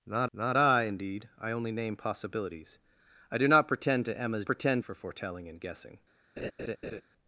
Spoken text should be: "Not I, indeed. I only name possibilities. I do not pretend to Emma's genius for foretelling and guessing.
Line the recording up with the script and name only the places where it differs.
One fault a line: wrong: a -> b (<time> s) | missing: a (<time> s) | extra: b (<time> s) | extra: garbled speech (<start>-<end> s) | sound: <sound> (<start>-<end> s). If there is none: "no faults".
extra: not (0.3 s)
wrong: genius -> pretend (4.5 s)
sound: laugh (6.4-7.0 s)